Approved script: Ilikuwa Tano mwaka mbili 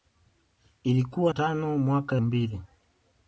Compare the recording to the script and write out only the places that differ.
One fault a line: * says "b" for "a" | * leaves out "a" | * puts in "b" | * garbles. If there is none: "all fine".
all fine